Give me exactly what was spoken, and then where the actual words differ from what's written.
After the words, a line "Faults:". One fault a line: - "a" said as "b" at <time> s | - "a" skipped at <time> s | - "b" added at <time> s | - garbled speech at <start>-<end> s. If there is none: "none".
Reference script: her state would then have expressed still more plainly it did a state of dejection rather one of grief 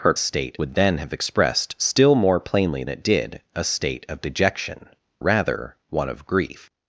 her state would then have expressed still more plainly it did a state of dejection rather one of grief
Faults:
none